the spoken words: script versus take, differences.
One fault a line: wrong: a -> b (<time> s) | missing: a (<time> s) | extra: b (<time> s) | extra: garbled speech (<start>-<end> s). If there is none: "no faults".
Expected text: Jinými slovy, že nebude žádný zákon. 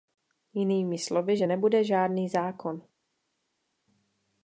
no faults